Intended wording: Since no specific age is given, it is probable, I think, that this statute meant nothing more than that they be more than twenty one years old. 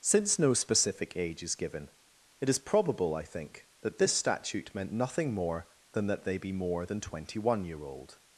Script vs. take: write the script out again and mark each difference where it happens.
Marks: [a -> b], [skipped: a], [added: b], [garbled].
Since no specific age is given, it is probable, I think, that this statute meant nothing more than that they be more than twenty one [years -> year] old.